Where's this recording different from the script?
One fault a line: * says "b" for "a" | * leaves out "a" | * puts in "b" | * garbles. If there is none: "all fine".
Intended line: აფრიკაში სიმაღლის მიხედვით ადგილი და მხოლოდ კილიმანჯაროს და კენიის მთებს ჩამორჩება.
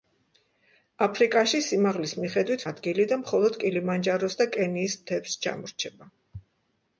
all fine